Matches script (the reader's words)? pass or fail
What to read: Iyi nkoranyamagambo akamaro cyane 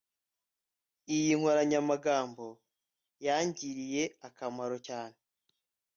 fail